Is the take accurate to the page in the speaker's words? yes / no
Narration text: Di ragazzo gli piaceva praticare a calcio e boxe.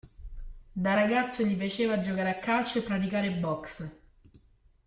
no